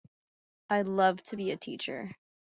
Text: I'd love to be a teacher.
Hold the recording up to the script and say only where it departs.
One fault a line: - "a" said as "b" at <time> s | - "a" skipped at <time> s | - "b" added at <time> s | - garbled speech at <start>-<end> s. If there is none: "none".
none